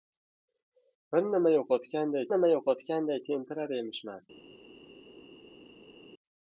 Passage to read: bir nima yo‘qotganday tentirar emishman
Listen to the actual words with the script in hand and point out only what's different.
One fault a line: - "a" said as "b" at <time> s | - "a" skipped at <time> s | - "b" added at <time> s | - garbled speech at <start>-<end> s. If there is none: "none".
- "nima yo‘qotganday" added at 2.3 s